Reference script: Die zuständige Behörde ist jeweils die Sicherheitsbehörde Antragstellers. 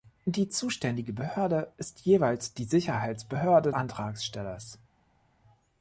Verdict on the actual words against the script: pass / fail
pass